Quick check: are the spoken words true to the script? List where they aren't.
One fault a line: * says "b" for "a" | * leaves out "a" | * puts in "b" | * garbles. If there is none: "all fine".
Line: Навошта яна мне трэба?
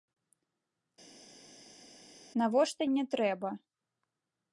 * leaves out "яна"